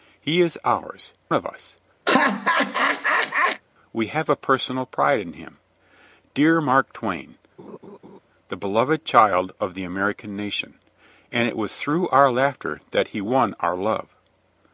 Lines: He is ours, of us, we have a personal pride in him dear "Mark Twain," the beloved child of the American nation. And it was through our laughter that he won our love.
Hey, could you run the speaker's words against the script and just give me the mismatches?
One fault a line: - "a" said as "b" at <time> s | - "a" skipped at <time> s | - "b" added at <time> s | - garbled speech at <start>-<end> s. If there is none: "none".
none